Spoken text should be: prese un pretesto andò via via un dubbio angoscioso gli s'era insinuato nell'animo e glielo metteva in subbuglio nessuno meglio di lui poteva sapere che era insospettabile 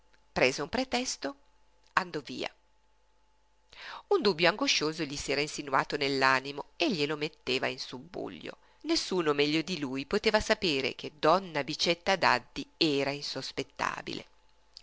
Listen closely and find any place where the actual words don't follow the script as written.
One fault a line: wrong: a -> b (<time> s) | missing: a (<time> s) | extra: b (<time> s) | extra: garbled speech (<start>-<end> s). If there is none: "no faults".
missing: via (2.5 s)
extra: donna bicetta daddi (11.2 s)